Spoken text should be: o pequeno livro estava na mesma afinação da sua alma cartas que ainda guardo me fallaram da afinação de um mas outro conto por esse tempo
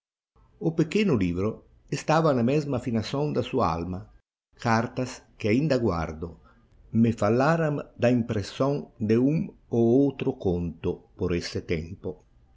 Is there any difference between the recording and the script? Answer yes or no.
yes